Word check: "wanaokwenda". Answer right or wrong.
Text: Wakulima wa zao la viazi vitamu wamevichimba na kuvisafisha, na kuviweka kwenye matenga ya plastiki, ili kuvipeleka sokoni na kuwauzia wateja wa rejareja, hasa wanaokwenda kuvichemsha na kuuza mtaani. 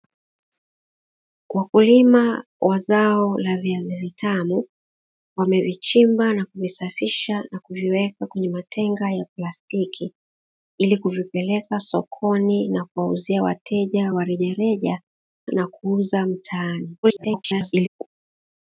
wrong